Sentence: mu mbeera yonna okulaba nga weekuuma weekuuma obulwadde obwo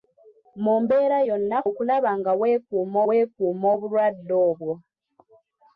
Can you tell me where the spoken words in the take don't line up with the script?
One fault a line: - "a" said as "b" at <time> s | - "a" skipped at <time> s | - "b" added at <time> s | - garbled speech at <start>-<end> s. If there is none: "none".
none